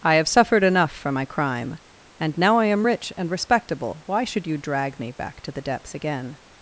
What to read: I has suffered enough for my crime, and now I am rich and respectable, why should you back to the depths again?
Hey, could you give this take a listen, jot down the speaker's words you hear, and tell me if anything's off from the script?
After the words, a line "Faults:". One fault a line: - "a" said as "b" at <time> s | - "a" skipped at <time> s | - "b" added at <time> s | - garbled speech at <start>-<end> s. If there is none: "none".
I have suffered enough for my crime, and now I am rich and respectable, why should you drag me back to the depths again?
Faults:
- "has" said as "have" at 0.1 s
- "drag me" added at 4.6 s